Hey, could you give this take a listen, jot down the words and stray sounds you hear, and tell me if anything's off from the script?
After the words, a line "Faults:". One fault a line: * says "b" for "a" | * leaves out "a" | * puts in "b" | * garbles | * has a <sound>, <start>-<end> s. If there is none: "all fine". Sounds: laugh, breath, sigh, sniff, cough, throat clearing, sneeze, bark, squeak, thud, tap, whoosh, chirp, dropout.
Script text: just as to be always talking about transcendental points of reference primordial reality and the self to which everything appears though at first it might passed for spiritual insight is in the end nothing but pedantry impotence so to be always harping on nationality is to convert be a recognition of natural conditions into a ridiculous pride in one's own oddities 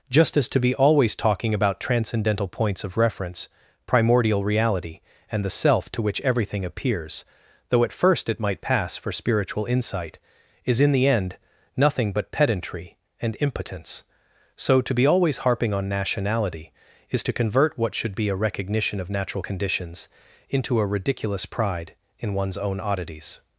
just as to be always talking about transcendental points of reference primordial reality and the self to which everything appears though at first it might pass for spiritual insight is in the end nothing but pedantry and impotence so to be always harping on nationality is to convert what should be a recognition of natural conditions into a ridiculous pride in one's own oddities
Faults:
* says "pass" for "passed"
* puts in "and"
* puts in "what should"